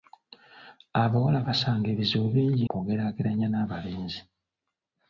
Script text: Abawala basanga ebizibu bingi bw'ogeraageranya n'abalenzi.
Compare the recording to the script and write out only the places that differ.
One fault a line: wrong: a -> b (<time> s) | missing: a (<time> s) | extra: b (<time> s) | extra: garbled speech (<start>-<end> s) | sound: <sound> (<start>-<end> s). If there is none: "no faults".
no faults